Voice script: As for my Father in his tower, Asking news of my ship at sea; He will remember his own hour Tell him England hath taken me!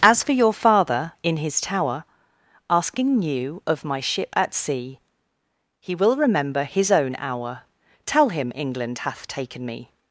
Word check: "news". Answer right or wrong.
wrong